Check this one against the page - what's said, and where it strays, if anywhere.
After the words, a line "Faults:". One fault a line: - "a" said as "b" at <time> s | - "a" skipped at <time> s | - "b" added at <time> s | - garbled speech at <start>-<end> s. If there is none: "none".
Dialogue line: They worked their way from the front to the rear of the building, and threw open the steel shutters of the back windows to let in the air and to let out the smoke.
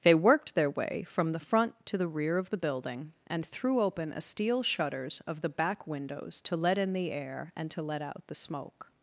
They worked their way from the front to the rear of the building, and threw open a steel shutters of the back windows to let in the air and to let out the smoke.
Faults:
- "the" said as "a" at 4.1 s